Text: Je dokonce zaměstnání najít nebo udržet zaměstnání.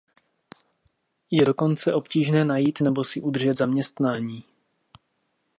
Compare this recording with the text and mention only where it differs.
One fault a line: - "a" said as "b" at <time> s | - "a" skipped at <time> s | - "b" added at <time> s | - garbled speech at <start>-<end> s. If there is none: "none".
- "zaměstnání" said as "obtížné" at 1.9 s
- "si" added at 3.0 s